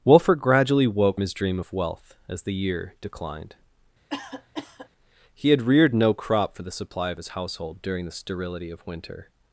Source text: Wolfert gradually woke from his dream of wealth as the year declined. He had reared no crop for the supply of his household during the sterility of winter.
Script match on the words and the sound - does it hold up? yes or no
no